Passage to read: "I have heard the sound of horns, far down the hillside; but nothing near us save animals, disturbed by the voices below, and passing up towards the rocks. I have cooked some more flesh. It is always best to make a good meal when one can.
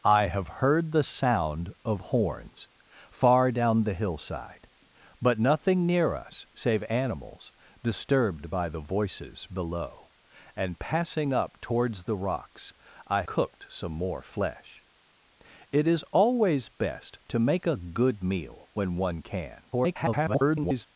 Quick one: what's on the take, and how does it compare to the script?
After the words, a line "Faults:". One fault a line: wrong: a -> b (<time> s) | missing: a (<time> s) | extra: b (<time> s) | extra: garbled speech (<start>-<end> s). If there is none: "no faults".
"I have heard the sound of horns, far down the hillside; but nothing near us save animals, disturbed by the voices below, and passing up towards the rocks. I cooked some more flesh. It is always best to make a good meal when one can. [garbled]
Faults:
missing: have (13.2 s)
extra: garbled speech (19.7-20.9 s)